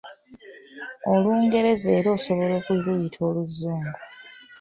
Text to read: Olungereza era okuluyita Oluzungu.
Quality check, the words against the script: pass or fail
fail